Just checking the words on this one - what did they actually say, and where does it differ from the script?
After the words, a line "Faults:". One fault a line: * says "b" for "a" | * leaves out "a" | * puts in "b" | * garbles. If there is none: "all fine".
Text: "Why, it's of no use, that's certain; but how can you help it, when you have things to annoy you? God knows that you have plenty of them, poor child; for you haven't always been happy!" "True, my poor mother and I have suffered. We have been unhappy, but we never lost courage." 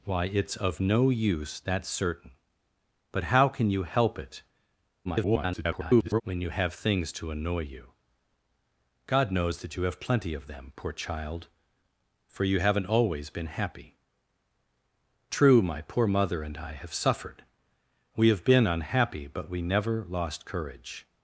"Why, it's of no use, that's certain; but how can you help it, [garbled] when you have things to annoy you? God knows that you have plenty of them, poor child; for you haven't always been happy!" "True, my poor mother and I have suffered. We have been unhappy, but we never lost courage."
Faults:
* garbles